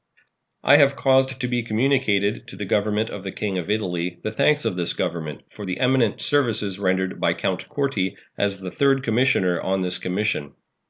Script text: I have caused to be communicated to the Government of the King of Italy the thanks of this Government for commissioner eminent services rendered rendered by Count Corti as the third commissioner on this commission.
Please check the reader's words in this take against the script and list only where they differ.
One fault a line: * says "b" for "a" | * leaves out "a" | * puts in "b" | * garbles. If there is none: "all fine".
* says "the" for "commissioner"
* leaves out "rendered"